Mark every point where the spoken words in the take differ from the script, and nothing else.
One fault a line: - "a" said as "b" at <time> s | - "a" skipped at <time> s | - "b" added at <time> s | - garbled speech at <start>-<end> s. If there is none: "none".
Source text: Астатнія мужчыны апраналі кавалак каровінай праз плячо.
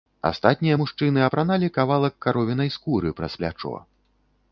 - "скуры" added at 2.8 s